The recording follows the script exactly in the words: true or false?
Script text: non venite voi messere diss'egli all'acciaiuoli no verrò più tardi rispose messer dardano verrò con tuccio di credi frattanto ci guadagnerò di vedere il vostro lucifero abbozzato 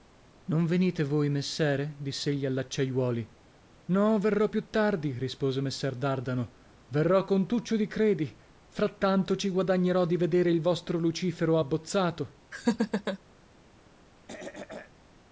true